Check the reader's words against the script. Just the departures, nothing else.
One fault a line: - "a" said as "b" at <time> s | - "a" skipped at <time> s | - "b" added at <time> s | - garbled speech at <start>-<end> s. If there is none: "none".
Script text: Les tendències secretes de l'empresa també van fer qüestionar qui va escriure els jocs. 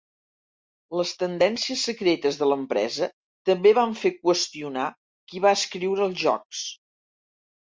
none